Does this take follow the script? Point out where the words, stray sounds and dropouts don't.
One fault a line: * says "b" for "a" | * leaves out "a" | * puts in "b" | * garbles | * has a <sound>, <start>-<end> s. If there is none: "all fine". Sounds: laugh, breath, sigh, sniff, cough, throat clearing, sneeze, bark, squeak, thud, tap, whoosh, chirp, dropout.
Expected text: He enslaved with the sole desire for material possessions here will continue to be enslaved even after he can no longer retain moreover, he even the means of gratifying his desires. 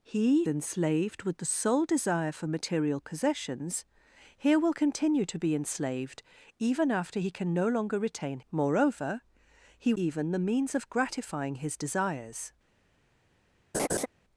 * has a laugh, 13.7-14.1 s